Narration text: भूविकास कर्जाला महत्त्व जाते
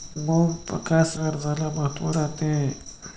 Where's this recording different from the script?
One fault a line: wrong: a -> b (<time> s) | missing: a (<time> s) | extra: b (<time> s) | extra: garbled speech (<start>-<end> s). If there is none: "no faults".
no faults